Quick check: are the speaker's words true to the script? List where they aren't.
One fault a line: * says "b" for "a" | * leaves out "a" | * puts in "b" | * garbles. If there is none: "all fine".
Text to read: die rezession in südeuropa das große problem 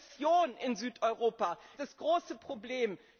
all fine